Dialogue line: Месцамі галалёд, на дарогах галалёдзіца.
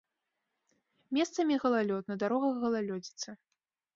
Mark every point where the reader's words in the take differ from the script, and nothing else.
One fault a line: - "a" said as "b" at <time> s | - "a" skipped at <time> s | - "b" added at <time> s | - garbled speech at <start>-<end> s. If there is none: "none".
none